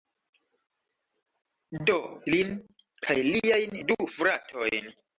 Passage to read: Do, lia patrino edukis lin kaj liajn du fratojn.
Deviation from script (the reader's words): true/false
true